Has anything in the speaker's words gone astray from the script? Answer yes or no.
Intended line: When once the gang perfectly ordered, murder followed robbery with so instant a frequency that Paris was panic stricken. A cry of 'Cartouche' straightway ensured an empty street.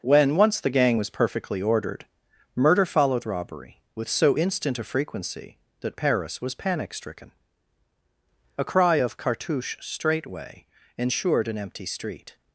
yes